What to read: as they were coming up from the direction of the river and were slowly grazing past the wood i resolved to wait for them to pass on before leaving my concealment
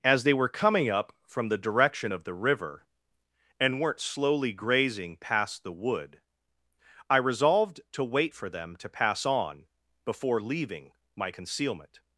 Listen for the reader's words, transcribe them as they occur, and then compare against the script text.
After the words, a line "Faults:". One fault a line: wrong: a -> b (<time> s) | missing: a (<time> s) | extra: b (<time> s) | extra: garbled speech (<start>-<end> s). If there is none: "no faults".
as they were coming up from the direction of the river and weren't slowly grazing past the wood i resolved to wait for them to pass on before leaving my concealment
Faults:
wrong: were -> weren't (3.8 s)